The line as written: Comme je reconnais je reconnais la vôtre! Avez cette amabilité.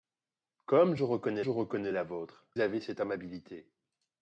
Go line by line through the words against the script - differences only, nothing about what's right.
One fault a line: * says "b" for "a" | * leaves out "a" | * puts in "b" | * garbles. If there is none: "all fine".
all fine